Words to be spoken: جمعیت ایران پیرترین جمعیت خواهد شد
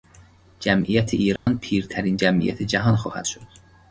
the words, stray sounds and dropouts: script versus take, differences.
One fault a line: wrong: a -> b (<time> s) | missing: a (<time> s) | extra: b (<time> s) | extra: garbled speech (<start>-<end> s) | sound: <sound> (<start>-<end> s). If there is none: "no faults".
sound: dropout (1.4-1.5 s)
extra: جهان (2.6 s)